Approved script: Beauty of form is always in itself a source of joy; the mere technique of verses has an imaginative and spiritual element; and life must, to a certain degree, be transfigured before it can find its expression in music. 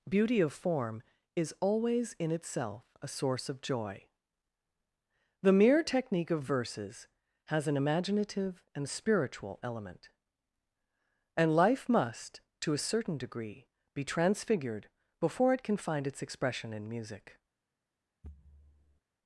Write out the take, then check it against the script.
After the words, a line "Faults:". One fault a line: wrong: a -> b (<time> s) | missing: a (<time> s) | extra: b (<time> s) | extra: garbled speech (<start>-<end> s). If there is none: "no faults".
Beauty of form is always in itself a source of joy; the mere technique of verses has an imaginative and spiritual element; and life must, to a certain degree, be transfigured before it can find its expression in music.
Faults:
no faults